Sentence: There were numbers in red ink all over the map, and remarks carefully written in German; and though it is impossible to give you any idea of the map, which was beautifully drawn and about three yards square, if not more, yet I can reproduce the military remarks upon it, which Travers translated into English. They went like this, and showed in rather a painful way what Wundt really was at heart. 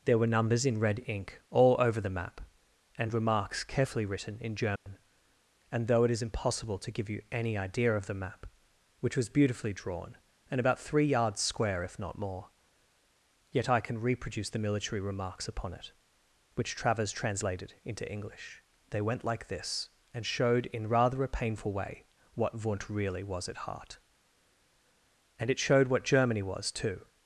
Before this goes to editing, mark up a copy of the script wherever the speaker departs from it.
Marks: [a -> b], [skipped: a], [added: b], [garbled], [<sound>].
There were numbers in red ink all over the map, and remarks carefully written in German; [dropout] and though it is impossible to give you any idea of the map, which was beautifully drawn and about three yards square, if not more, yet I can reproduce the military remarks upon it, which Travers translated into English. They went like this, and showed in rather a painful way what Wundt really was at heart. [added: And it showed what Germany was too]